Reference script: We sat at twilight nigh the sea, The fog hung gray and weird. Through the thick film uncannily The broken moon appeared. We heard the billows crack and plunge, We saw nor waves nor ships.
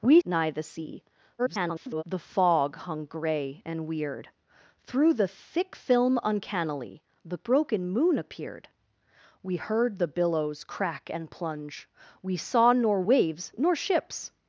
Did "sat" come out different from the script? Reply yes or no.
yes